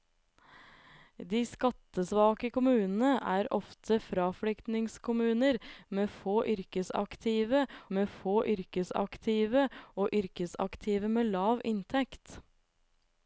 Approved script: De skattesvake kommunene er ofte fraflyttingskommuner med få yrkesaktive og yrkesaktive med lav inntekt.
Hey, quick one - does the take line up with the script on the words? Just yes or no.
no